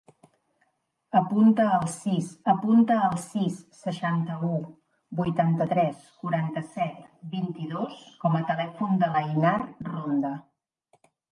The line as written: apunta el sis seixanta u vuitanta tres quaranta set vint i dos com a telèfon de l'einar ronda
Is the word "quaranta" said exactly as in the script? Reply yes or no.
yes